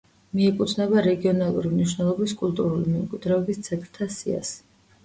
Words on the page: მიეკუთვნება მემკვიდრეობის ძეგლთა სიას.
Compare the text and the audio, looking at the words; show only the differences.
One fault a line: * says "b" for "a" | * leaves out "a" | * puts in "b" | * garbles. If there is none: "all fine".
* puts in "რეგიონალური მნიშვნელობის კულტურული"